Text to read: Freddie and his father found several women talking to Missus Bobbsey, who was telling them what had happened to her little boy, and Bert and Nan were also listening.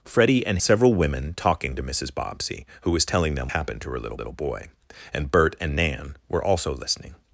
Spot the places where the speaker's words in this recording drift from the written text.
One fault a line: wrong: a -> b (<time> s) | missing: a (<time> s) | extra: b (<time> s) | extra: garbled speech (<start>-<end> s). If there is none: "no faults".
missing: his father found (0.6 s)
missing: what had (3.5 s)
extra: little (4.1 s)